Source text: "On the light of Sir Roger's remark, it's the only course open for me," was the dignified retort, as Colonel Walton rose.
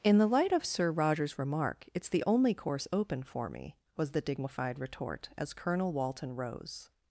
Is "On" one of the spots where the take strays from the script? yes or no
yes